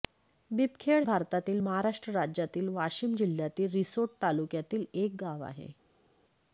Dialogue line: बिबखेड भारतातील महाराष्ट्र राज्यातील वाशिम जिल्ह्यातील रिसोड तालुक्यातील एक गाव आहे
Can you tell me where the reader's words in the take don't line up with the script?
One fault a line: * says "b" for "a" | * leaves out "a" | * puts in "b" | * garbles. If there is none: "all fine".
all fine